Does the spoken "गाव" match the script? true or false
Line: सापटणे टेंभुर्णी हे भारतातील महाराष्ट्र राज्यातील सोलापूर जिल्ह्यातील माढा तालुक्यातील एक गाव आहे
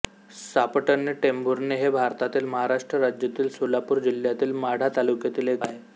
false